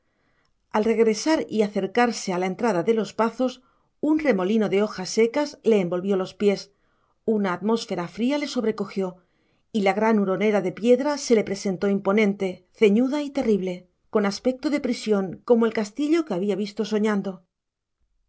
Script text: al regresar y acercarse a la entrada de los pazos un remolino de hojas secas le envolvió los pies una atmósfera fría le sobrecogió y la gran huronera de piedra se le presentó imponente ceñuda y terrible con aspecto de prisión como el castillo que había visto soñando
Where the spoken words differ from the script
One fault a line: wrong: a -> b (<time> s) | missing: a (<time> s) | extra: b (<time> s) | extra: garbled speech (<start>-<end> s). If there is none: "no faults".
no faults